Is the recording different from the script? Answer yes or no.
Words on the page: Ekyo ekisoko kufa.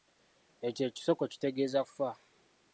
yes